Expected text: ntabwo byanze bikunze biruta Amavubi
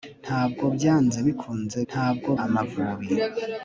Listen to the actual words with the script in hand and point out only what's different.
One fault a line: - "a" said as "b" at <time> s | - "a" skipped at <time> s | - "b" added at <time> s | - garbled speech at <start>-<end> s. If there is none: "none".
- "biruta" said as "ntabwo" at 1.9 s